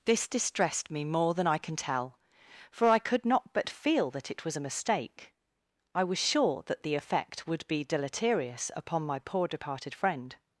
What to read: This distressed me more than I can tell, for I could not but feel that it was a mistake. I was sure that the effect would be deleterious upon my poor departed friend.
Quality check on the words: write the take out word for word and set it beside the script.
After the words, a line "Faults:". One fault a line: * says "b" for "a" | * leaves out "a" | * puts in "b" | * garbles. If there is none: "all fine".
This distressed me more than I can tell, for I could not but feel that it was a mistake. I was sure that the effect would be deleterious upon my poor departed friend.
Faults:
all fine